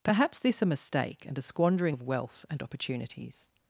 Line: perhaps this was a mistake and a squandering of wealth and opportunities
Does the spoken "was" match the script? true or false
false